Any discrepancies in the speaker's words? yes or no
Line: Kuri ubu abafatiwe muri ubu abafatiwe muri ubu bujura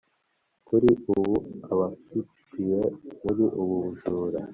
yes